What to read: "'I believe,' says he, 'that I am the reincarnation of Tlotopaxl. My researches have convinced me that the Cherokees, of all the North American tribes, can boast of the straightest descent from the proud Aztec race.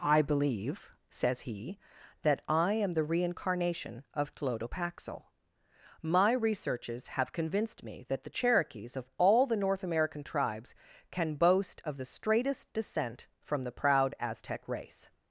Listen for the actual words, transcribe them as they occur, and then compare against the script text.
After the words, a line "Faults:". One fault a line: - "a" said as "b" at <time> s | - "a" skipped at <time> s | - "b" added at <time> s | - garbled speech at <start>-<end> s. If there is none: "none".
"'I believe,' says he, 'that I am the reincarnation of Tlotopaxl. My researches have convinced me that the Cherokees, of all the North American tribes, can boast of the straightest descent from the proud Aztec race.
Faults:
none